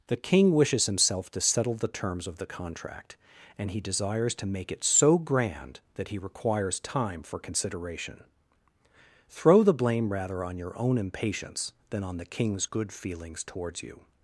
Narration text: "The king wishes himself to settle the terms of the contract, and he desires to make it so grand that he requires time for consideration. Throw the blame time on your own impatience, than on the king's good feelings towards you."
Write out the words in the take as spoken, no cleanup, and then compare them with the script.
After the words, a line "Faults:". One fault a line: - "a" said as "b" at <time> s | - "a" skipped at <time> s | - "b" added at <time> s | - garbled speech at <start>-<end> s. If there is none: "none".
"The king wishes himself to settle the terms of the contract, and he desires to make it so grand that he requires time for consideration. Throw the blame rather on your own impatience, than on the king's good feelings towards you."
Faults:
- "time" said as "rather" at 10.1 s